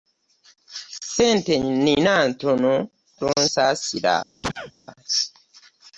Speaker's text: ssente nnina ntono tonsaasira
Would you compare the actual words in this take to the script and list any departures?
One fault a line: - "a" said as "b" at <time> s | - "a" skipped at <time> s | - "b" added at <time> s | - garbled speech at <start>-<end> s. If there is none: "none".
none